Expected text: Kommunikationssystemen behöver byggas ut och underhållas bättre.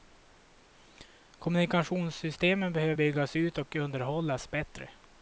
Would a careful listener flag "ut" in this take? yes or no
no